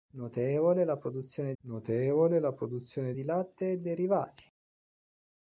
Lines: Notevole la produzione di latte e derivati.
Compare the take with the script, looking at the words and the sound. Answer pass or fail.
fail